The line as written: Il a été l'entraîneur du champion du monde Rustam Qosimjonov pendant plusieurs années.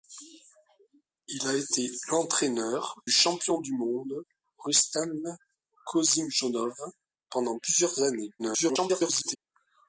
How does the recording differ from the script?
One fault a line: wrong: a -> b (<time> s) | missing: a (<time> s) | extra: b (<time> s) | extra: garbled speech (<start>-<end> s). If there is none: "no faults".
missing: du (3.0 s)
extra: garbled speech (8.4-9.4 s)